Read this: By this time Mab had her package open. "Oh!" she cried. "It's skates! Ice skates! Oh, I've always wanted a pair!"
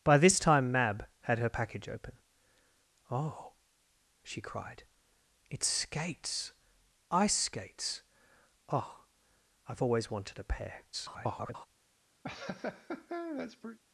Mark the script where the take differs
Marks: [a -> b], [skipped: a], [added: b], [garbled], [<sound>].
By this time Mab had her package open. "Oh!" she cried. "It's skates! Ice skates! Oh, I've always wanted a pair!" [garbled] [laugh]